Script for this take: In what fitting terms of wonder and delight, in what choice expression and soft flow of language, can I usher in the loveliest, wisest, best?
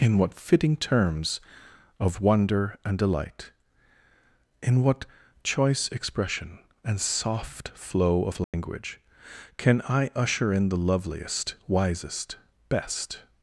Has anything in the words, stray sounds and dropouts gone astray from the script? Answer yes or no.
yes